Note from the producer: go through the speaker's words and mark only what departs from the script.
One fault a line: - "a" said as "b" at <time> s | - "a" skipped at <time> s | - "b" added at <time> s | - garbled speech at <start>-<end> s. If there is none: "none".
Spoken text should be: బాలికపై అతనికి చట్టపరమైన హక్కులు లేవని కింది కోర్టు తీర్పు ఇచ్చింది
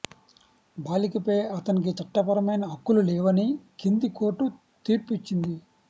none